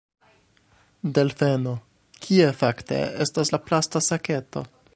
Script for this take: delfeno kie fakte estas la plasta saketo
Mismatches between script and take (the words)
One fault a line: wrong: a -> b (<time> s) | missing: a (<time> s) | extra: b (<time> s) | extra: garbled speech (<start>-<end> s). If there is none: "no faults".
no faults